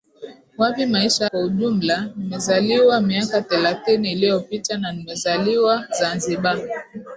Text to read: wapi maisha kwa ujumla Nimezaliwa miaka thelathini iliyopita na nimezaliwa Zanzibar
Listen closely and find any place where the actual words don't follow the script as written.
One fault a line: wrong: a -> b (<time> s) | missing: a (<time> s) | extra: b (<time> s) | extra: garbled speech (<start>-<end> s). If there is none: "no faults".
no faults